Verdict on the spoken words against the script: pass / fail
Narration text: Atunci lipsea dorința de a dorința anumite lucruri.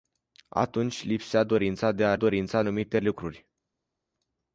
pass